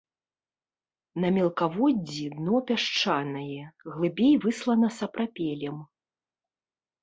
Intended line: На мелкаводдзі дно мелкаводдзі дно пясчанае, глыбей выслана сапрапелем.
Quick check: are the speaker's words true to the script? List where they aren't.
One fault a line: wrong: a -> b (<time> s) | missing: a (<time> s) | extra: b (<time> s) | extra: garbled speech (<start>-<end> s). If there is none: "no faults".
missing: мелкаводдзі дно (2.5 s)